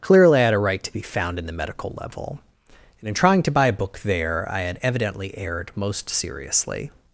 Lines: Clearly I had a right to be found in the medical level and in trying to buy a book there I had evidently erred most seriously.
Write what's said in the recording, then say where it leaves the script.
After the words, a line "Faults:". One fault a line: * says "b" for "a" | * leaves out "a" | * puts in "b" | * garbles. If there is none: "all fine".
Clearly I had a right to be found in the medical level and in trying to buy a book there I had evidently erred most seriously.
Faults:
all fine